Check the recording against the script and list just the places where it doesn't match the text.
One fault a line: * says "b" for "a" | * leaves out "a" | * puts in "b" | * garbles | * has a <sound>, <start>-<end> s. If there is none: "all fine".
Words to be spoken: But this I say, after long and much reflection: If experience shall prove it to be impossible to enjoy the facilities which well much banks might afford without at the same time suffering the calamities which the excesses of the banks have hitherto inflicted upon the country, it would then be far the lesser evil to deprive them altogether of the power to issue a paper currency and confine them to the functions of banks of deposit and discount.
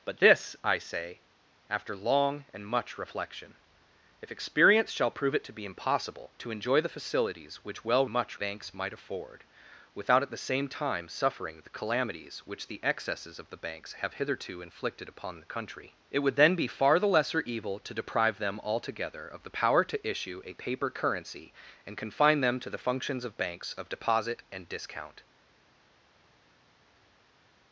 all fine